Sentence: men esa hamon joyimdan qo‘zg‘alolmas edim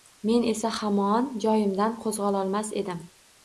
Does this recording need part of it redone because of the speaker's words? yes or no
no